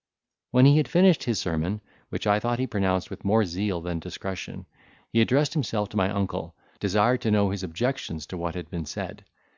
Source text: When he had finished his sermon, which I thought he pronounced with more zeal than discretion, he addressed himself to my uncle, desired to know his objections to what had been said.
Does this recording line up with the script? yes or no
yes